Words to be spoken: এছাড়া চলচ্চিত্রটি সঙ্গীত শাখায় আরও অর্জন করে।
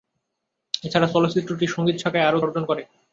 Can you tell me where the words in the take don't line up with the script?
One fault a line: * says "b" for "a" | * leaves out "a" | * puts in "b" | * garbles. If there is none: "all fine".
all fine